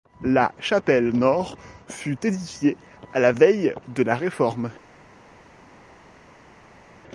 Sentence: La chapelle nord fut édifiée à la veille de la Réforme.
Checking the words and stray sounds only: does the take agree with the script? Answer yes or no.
yes